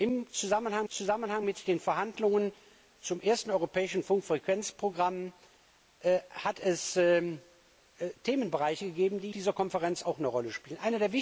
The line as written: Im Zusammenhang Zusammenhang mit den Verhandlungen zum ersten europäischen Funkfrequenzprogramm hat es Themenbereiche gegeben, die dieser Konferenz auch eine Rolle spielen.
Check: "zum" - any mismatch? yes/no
no